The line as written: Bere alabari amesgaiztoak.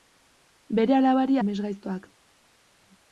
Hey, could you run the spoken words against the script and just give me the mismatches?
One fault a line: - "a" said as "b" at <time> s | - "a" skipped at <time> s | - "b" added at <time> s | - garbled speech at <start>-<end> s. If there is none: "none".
none